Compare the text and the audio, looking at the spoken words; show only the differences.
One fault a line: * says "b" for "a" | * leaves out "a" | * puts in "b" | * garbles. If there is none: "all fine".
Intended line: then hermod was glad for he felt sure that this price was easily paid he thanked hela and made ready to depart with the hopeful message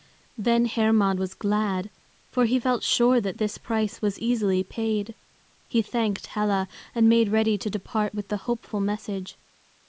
all fine